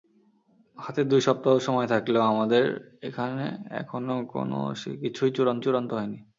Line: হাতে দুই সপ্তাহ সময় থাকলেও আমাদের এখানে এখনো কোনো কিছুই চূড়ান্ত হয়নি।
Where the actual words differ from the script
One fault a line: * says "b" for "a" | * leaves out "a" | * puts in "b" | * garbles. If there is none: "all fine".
* puts in "চূড়ান্ত"